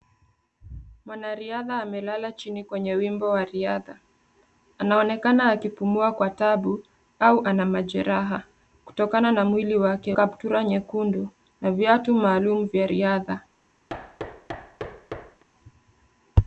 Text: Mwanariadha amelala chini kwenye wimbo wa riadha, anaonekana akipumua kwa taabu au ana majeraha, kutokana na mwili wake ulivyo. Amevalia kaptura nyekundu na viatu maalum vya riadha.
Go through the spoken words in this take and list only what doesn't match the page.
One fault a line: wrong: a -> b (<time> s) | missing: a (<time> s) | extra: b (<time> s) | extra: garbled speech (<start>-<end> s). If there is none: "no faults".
missing: ulivyo Amevalia (10.1 s)